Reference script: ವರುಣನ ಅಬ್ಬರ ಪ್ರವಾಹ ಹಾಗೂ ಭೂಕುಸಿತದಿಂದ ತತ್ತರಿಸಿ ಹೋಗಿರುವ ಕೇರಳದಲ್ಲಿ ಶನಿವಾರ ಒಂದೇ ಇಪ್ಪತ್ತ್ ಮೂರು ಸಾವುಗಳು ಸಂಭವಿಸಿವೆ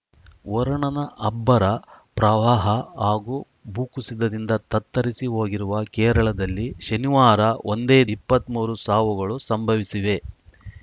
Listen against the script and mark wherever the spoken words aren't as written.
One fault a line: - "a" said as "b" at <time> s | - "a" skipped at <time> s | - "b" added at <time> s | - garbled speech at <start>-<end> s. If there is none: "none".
none